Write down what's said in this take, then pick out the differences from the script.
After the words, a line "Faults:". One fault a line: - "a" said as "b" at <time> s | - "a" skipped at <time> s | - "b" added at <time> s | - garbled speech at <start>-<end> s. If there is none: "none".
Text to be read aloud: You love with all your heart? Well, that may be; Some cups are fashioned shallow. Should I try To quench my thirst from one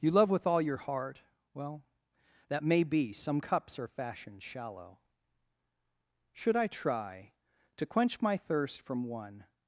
You love with all your heart? Well, that may be; Some cups are fashioned shallow. Should I try To quench my thirst from one
Faults:
none